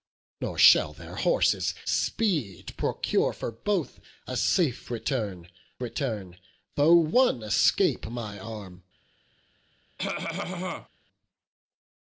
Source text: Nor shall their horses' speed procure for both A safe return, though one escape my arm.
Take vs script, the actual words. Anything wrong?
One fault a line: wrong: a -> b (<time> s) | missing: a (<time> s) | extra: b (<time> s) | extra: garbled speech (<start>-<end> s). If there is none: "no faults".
extra: return (5.8 s)